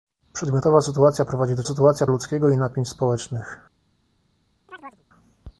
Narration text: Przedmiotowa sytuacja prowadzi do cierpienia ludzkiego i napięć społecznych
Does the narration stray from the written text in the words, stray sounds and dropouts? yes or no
yes